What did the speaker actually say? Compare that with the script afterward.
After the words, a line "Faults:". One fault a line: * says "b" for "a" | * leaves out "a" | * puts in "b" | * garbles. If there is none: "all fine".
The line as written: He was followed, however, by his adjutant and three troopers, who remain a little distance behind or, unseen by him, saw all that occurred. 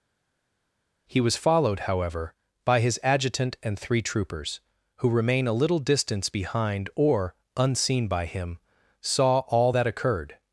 He was followed, however, by his adjutant and three troopers, who remain a little distance behind or, unseen by him, saw all that occurred.
Faults:
all fine